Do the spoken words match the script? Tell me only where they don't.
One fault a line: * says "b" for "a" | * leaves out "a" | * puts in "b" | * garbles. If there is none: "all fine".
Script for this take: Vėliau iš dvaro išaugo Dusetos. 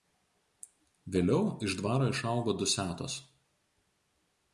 all fine